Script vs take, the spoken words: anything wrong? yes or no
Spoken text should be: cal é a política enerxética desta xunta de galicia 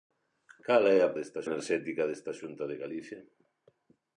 yes